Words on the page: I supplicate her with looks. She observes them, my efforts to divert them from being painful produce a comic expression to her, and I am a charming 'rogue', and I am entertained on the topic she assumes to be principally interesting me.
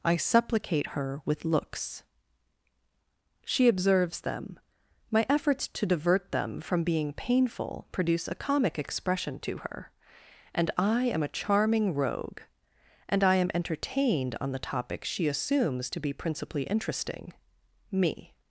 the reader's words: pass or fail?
pass